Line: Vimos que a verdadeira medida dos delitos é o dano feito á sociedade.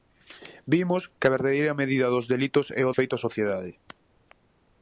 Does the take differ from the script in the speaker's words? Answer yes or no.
yes